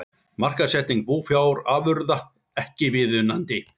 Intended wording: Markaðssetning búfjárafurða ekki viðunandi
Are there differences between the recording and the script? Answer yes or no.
no